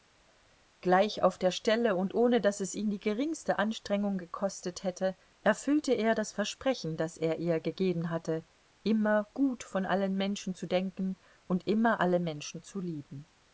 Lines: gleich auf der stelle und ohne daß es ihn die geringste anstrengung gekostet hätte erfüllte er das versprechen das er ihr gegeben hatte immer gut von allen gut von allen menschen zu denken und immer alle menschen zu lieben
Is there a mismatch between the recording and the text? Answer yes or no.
yes